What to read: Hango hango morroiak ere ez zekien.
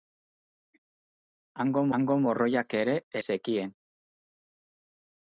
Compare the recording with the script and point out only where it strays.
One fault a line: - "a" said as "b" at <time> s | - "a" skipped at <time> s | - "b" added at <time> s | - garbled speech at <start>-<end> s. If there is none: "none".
none